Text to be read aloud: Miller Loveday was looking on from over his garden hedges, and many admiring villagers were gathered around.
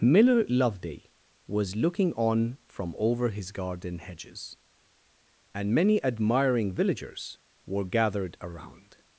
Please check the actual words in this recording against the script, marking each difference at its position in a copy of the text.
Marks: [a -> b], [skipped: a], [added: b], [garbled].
Miller Loveday was looking on from over his garden hedges, and many admiring villagers were gathered around.